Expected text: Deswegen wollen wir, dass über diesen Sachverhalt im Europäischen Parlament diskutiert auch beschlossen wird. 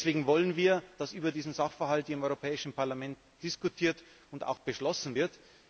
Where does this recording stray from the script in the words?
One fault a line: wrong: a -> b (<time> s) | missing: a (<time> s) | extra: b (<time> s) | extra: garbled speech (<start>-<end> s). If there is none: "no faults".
extra: und (4.3 s)